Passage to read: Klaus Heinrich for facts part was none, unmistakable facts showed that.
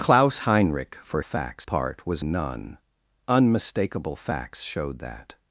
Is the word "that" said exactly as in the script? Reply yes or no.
yes